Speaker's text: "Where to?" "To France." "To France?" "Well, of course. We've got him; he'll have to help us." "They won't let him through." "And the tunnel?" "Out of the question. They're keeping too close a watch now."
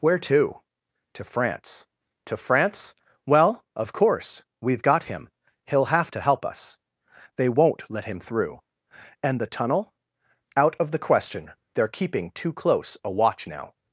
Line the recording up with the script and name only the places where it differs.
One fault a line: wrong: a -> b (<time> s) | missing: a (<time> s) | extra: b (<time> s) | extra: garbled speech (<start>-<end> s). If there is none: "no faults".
no faults